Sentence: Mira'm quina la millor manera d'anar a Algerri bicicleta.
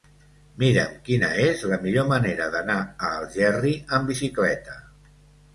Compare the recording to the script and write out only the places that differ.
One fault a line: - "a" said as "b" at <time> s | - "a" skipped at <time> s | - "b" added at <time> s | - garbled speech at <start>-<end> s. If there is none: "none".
- "és" added at 1.4 s
- "amb" added at 4.0 s